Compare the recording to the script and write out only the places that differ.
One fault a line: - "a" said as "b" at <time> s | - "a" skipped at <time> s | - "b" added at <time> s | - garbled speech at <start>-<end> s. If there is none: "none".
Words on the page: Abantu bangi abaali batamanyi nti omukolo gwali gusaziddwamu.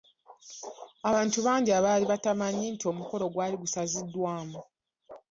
none